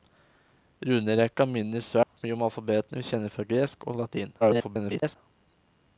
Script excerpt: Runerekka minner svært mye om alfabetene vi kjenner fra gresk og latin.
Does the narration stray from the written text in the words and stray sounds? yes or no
yes